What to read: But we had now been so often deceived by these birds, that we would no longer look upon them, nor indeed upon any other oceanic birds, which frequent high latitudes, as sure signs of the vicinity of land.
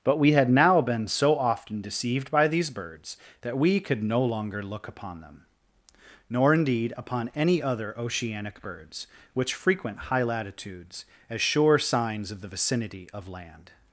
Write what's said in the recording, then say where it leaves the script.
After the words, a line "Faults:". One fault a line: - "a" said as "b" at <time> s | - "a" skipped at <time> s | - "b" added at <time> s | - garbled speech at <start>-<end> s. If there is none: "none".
But we had now been so often deceived by these birds, that we could no longer look upon them, nor indeed upon any other oceanic birds, which frequent high latitudes, as sure signs of the vicinity of land.
Faults:
- "would" said as "could" at 3.8 s